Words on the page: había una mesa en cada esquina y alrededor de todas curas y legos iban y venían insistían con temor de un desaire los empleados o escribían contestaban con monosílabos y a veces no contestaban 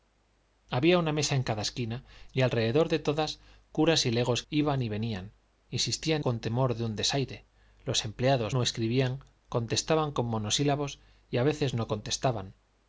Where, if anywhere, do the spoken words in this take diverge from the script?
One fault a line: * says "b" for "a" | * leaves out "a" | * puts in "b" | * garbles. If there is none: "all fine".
all fine